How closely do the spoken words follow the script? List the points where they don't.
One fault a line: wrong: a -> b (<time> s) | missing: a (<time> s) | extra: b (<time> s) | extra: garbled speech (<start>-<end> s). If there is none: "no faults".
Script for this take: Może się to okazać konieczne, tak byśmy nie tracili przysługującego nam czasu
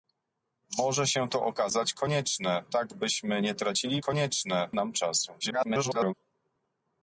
wrong: przysługującego -> konieczne (4.0 s)
extra: garbled speech (5.4-6.1 s)